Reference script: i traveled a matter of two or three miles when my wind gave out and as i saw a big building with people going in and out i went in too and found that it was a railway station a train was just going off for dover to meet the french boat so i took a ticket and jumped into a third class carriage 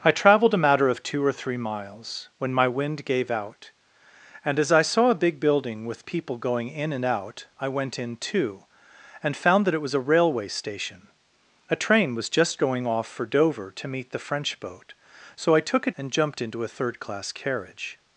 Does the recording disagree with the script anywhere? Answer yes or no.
yes